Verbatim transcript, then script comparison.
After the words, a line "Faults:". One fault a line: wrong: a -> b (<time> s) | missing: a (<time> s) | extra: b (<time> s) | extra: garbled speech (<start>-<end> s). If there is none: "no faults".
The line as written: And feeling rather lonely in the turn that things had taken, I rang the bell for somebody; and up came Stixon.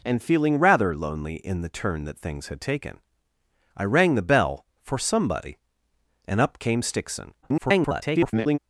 And feeling rather lonely in the turn that things had taken, I rang the bell for somebody; and up came Stixon. [garbled]
Faults:
extra: garbled speech (7.4-8.6 s)